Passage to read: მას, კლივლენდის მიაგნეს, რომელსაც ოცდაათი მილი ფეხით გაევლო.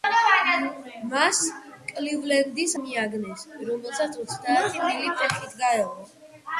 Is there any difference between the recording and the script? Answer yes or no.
no